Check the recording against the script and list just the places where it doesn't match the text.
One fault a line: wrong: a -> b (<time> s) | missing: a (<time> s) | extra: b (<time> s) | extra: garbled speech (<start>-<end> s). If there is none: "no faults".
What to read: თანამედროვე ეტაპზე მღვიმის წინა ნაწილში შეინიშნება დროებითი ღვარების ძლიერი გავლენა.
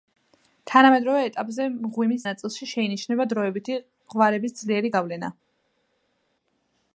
missing: წინა (2.2 s)